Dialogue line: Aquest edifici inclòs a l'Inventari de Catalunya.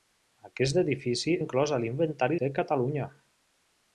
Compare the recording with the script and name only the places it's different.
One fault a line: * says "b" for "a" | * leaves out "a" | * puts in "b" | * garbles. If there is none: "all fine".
all fine